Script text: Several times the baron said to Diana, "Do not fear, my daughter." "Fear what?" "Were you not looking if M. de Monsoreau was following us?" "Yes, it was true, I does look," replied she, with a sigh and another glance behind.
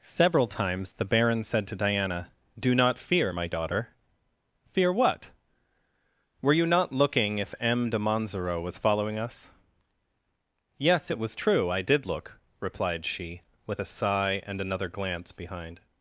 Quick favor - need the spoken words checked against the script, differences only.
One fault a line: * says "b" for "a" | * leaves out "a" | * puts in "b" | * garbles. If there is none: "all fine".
* says "did" for "does"